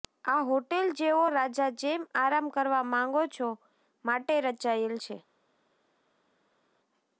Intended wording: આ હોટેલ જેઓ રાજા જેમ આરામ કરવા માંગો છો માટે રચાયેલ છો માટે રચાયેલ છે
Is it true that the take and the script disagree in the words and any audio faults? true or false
true